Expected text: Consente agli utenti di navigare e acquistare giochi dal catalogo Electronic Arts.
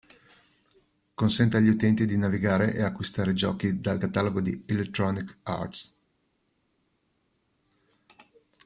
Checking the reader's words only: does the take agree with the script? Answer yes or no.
no